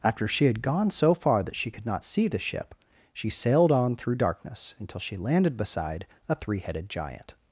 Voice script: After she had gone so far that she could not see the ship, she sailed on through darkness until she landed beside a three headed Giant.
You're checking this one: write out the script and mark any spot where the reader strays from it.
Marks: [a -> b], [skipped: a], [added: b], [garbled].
After she had gone so far that she could not see the ship, she sailed on through darkness until she landed beside a three headed Giant.